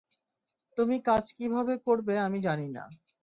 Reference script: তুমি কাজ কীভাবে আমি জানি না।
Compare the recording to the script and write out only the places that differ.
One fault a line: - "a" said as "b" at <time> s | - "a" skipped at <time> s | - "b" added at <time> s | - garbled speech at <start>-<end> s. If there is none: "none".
- "করবে" added at 1.9 s